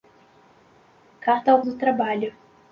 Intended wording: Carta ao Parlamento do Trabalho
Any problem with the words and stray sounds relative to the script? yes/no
yes